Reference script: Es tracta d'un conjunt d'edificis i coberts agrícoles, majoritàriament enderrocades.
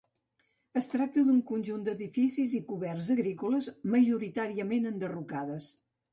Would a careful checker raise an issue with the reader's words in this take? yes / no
no